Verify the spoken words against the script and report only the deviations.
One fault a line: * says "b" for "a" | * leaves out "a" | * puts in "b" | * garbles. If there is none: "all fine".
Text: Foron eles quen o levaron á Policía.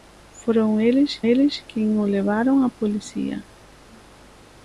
* puts in "eles"